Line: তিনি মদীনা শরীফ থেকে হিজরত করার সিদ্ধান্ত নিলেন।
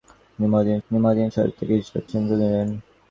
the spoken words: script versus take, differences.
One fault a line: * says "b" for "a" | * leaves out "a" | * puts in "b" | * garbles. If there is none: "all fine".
* puts in "তিনি মদীনা"
* leaves out "করার"